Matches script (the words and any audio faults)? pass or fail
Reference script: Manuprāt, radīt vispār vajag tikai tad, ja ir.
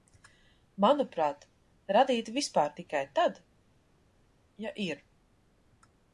fail